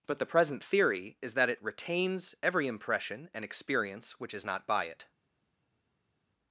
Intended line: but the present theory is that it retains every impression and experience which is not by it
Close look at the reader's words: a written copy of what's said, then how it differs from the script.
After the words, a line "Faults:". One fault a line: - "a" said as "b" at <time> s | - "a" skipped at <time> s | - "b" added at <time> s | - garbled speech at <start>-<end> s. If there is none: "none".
but the present theory is that it retains every impression and experience which is not by it
Faults:
none